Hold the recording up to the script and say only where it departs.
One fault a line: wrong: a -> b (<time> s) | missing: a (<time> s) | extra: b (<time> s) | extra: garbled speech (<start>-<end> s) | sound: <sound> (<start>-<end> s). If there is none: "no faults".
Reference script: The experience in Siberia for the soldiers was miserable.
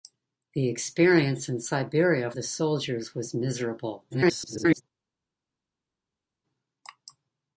missing: for (2.3 s)
extra: garbled speech (4.1-4.8 s)